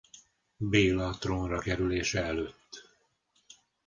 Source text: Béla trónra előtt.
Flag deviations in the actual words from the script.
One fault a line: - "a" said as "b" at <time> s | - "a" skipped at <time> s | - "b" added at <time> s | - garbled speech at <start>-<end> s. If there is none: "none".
- "kerülése" added at 1.6 s